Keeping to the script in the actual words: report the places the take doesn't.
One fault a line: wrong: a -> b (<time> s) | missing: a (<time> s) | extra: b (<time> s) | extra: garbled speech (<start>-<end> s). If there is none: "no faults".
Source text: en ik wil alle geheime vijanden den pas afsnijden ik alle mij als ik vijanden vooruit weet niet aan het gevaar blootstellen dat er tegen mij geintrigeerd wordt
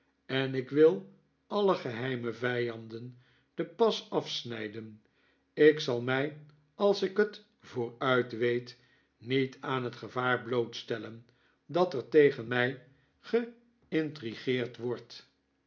wrong: alle -> zal (5.8 s)
wrong: vijanden -> het (7.2 s)